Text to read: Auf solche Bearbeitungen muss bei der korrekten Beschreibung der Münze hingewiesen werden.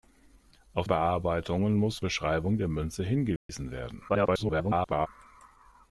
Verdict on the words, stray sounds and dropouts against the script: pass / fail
fail